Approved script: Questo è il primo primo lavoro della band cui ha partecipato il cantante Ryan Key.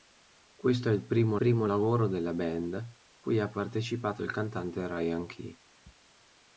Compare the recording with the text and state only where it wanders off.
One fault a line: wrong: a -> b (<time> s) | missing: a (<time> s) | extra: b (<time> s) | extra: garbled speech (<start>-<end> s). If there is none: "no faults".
no faults